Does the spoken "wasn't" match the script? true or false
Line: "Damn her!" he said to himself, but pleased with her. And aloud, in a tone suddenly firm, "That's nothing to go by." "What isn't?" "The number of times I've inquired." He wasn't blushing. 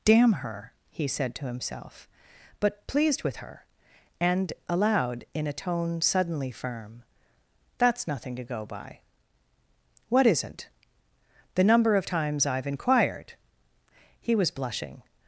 false